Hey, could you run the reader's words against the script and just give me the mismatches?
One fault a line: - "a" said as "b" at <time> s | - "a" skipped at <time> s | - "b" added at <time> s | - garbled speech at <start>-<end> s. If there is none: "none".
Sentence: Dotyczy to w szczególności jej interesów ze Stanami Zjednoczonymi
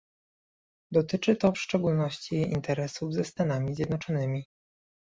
none